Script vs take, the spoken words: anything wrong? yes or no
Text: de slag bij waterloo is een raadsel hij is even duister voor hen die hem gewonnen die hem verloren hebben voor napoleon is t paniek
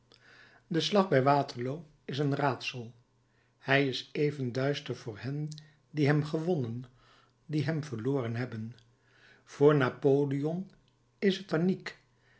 no